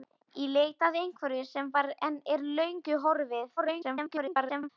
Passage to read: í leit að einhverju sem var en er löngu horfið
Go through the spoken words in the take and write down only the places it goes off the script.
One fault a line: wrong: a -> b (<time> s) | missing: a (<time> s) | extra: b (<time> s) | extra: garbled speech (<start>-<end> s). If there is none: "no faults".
extra: garbled speech (3.6-4.7 s)